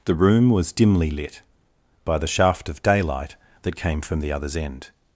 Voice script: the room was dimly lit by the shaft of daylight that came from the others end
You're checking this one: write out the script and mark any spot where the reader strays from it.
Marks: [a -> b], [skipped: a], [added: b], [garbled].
the room was dimly lit by the shaft of daylight that came from the others end